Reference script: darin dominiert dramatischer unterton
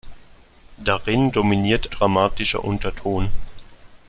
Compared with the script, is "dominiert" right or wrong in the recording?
right